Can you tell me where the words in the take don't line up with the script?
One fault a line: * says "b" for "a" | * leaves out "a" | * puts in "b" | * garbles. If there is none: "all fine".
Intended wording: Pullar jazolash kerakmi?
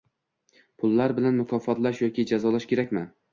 * puts in "bilan mukofotlash yoki"